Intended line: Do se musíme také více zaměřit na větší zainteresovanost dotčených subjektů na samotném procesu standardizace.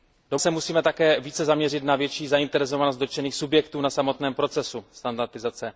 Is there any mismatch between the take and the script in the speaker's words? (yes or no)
no